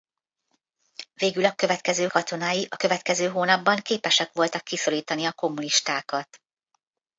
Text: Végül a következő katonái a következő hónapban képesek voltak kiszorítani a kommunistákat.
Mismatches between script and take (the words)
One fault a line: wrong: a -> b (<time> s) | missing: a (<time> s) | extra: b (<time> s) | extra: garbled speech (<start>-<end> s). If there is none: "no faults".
no faults